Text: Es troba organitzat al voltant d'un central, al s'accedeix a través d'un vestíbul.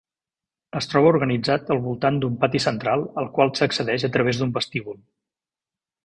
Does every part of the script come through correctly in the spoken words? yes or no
no